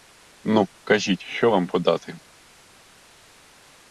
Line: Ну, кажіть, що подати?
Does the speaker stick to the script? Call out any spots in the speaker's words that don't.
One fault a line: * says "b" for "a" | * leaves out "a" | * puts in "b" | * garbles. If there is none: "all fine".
* puts in "вам"